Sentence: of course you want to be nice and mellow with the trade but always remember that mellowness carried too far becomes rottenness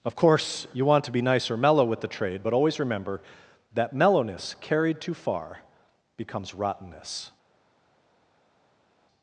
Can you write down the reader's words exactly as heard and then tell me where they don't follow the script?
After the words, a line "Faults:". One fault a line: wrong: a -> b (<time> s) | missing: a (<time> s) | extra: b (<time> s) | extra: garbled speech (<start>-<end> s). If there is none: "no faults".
of course you want to be nice or mellow with the trade but always remember that mellowness carried too far becomes rottenness
Faults:
wrong: and -> or (1.5 s)